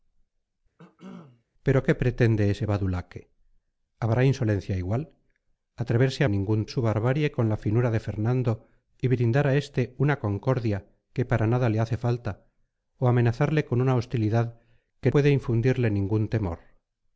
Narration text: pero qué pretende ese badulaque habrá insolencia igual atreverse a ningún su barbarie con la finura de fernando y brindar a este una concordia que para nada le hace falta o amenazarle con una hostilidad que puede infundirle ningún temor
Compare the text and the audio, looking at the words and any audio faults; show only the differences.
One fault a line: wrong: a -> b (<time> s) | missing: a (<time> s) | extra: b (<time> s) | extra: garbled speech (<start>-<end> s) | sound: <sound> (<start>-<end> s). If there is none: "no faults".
sound: cough (0.8-1.4 s)